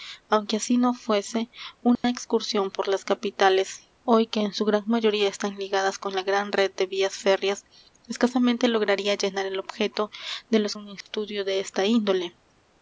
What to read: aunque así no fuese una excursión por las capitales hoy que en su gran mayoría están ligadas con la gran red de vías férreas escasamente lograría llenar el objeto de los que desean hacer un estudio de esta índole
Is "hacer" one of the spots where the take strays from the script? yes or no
yes